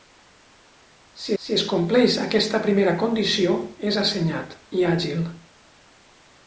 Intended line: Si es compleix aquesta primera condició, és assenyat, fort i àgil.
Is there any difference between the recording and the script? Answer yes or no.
yes